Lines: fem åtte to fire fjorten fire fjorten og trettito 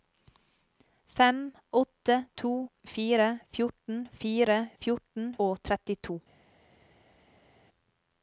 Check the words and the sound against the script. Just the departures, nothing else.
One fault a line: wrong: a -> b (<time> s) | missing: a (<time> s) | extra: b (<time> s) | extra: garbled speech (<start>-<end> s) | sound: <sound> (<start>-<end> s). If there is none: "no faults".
no faults